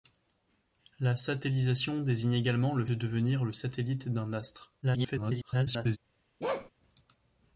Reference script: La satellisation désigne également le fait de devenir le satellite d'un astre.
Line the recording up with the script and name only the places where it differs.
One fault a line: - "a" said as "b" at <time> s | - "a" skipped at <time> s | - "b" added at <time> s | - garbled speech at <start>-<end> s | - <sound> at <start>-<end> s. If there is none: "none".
- "fait" skipped at 2.9 s
- garbled speech at 4.8-6.0 s
- bark at 6.4-6.7 s